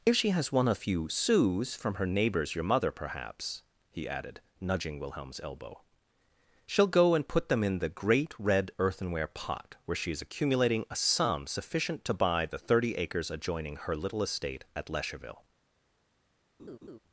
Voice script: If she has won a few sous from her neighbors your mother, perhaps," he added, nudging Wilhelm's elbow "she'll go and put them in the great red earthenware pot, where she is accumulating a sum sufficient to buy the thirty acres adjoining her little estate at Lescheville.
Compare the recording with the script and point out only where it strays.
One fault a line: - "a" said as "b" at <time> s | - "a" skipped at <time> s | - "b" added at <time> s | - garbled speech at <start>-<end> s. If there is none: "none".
none